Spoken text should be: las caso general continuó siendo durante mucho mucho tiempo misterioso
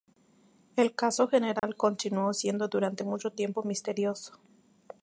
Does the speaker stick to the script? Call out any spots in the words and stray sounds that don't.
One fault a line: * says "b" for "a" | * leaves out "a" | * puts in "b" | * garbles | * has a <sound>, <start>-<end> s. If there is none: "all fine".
* says "el" for "las"
* has a dropout, 1.6-1.6 s
* leaves out "mucho"